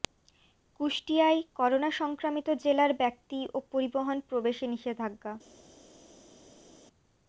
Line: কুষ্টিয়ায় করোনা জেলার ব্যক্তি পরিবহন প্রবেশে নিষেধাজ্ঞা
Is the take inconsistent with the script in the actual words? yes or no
yes